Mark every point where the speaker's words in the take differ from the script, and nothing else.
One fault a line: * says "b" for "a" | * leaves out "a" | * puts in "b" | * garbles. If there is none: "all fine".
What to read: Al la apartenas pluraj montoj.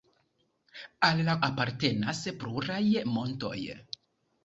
all fine